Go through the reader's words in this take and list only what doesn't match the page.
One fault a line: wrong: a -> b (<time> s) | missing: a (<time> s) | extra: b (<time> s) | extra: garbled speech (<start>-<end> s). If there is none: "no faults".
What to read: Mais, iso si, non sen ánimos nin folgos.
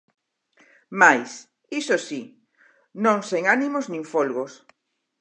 no faults